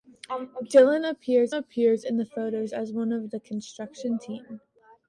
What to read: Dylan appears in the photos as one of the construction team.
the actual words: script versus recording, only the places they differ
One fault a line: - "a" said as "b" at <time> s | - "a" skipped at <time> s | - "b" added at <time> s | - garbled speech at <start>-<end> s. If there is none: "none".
- "appears" added at 1.5 s